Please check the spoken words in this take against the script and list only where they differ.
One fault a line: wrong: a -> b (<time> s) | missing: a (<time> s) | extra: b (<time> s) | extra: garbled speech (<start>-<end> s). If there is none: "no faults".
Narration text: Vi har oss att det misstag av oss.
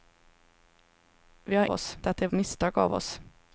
no faults